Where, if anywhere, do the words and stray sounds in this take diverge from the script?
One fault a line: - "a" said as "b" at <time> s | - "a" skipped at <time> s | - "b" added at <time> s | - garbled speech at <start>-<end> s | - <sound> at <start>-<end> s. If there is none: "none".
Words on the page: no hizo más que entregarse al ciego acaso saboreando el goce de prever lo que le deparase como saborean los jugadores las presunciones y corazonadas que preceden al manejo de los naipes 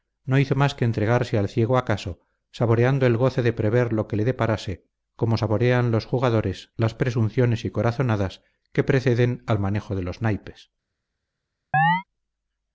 - chirp at 11.7-12.0 s